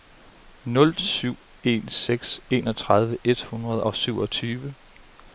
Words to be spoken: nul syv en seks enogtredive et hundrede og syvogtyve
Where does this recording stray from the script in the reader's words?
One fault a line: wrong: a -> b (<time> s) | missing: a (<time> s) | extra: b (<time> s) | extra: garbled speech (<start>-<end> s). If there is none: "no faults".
no faults